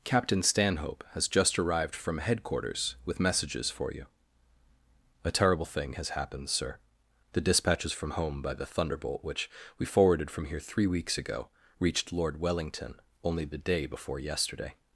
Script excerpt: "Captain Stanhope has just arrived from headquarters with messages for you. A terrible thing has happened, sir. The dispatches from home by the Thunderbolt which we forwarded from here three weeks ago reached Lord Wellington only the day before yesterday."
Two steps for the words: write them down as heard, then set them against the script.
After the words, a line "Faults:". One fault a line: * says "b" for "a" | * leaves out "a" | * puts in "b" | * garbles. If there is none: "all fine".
"Captain Stanhope has just arrived from headquarters with messages for you. A terrible thing has happened, sir. The dispatches from home by the Thunderbolt which we forwarded from here three weeks ago reached Lord Wellington only the day before yesterday."
Faults:
all fine